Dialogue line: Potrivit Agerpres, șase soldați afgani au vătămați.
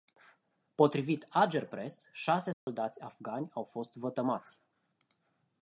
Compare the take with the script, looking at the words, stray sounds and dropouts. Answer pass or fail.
fail